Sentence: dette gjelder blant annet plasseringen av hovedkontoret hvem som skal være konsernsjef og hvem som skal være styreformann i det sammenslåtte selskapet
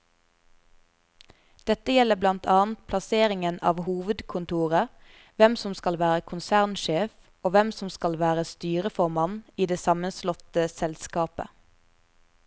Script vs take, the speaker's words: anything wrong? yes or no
no